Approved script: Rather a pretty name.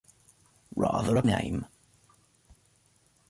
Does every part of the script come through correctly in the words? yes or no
no